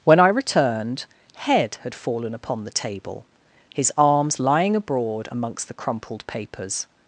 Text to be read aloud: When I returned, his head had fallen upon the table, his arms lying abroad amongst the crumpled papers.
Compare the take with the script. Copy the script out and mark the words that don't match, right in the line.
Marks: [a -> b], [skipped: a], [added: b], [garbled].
When I returned, [skipped: his] head had fallen upon the table, his arms lying abroad amongst the crumpled papers.